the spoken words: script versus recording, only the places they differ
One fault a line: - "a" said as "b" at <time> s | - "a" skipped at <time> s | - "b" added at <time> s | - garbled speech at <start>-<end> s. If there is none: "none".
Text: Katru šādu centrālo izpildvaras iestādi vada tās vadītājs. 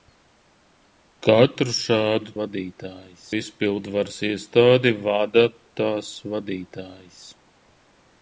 - "centrālo" said as "vadītājs" at 2.4 s